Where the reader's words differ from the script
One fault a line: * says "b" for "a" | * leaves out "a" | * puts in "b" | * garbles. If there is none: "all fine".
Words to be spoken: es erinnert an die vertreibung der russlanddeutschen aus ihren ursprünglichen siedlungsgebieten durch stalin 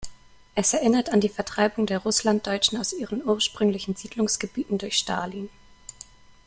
all fine